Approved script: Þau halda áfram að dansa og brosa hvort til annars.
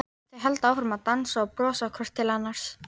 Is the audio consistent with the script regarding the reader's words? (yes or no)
yes